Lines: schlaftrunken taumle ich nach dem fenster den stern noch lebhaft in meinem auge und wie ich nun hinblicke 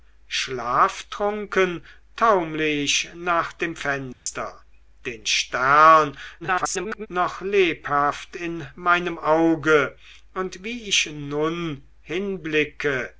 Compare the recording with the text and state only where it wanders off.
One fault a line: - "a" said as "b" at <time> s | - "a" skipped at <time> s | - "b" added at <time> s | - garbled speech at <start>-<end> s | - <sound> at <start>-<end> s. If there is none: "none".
- dropout at 4.1-4.3 s
- garbled speech at 6.4-7.1 s